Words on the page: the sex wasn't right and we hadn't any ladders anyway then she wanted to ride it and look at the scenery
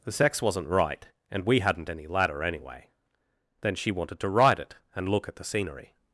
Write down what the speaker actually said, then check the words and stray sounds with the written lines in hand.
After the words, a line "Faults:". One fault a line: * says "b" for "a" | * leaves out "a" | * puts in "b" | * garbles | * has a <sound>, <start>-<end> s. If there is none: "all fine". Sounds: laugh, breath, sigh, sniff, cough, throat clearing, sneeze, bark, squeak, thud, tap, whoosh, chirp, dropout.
the sex wasn't right and we hadn't any ladder anyway then she wanted to ride it and look at the scenery
Faults:
* says "ladder" for "ladders"